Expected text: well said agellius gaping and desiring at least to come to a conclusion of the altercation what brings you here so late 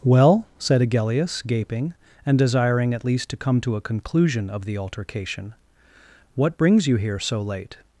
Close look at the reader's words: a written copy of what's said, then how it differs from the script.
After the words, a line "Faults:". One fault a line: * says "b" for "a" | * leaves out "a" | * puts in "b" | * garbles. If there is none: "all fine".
well said agellius gaping and desiring at least to come to a conclusion of the altercation what brings you here so late
Faults:
all fine